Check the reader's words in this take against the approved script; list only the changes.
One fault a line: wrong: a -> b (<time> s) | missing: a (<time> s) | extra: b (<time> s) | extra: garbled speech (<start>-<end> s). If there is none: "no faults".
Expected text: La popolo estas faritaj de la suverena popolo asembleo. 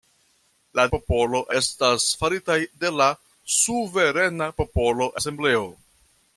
no faults